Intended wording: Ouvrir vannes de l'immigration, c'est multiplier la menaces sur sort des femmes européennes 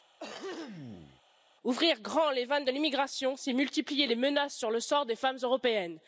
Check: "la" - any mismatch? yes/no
yes